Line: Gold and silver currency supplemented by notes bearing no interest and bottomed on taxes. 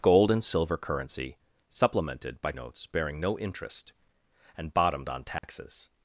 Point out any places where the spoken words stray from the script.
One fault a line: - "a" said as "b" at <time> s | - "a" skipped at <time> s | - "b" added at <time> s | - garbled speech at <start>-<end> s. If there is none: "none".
none